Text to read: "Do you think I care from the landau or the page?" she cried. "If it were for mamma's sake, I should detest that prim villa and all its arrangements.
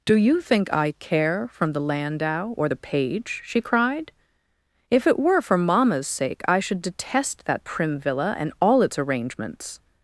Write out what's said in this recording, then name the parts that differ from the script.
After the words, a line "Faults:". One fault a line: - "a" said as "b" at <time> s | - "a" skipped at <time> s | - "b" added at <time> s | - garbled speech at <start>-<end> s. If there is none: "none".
"Do you think I care from the landau or the page?" she cried. "If it were for mamma's sake, I should detest that prim villa and all its arrangements.
Faults:
none